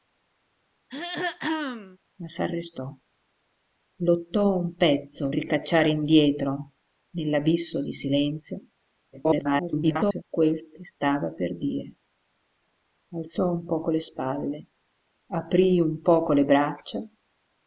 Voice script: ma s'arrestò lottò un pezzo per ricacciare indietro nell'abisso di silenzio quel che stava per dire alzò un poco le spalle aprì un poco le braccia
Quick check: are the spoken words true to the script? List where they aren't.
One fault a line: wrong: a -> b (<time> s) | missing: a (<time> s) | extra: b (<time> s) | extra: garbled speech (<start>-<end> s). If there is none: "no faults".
missing: per (5.3 s)
extra: garbled speech (9.1-10.2 s)